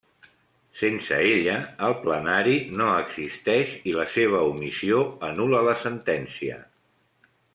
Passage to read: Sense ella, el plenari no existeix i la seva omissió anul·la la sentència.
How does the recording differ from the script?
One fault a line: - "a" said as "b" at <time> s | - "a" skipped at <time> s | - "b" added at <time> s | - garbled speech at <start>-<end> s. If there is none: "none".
none